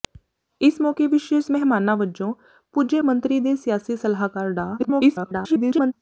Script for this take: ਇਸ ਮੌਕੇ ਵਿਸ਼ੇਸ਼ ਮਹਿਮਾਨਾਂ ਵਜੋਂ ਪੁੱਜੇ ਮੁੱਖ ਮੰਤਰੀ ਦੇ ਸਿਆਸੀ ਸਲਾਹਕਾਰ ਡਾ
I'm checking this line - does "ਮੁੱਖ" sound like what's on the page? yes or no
no